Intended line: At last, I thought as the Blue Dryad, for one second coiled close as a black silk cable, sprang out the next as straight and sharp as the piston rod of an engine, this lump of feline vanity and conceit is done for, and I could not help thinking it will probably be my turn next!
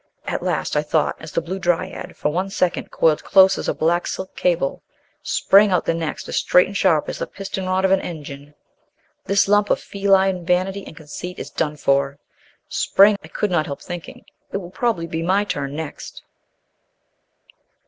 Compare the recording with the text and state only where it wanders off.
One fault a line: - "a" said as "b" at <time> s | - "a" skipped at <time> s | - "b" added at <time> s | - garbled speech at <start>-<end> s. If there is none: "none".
- "and" said as "sprang" at 12.7 s